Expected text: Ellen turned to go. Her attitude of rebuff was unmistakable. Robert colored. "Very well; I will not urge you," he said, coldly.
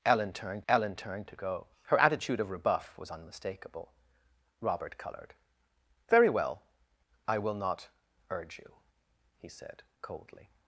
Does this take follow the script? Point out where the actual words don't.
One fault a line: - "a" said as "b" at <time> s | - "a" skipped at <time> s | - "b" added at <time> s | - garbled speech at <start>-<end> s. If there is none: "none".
- "ellen turned" added at 0.7 s